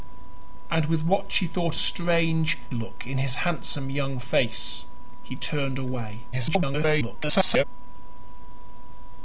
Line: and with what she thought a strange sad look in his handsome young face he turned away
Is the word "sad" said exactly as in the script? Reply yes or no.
no